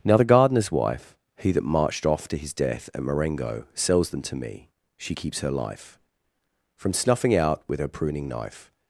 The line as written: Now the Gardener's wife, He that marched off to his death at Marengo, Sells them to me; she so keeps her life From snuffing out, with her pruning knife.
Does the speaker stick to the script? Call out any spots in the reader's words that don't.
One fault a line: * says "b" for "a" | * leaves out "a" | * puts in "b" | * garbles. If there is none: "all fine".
* leaves out "so"